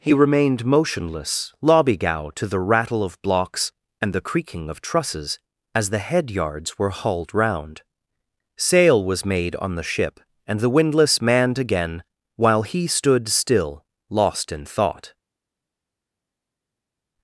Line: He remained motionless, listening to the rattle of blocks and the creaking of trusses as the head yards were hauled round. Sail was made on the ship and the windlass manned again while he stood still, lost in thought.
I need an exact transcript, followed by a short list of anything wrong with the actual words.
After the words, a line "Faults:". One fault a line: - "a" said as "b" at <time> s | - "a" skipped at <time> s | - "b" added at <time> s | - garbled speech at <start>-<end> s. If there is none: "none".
He remained motionless, lobbygow to the rattle of blocks and the creaking of trusses as the head yards were hauled round. Sail was made on the ship and the windlass manned again while he stood still, lost in thought.
Faults:
- "listening" said as "lobbygow" at 1.6 s